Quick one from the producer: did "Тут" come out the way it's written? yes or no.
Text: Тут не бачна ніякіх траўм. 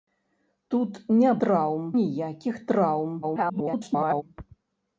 yes